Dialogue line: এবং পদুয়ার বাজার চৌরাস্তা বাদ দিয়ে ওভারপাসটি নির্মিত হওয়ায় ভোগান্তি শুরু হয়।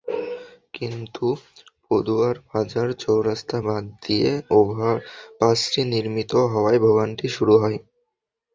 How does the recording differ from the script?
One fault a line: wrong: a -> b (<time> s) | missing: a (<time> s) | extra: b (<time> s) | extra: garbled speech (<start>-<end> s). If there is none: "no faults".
wrong: এবং -> কিন্তু (0.7 s)